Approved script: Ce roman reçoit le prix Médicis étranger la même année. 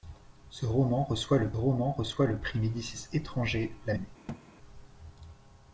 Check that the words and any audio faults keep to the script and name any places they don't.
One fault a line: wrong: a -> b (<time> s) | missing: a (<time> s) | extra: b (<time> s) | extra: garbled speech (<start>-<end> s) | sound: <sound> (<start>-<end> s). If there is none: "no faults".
extra: roman reçoit le (1.5 s)
missing: même (3.9 s)
sound: thud (4.3-4.4 s)